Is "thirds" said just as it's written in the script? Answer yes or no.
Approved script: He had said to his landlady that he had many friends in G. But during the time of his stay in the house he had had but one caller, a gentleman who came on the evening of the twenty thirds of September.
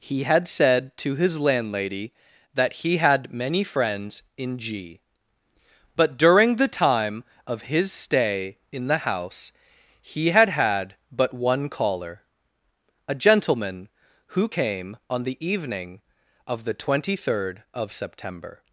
no